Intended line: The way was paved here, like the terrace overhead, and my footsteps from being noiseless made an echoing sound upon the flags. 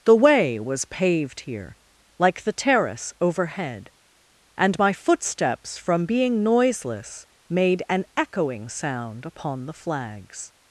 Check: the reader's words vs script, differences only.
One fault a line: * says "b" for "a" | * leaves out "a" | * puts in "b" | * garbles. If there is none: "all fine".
all fine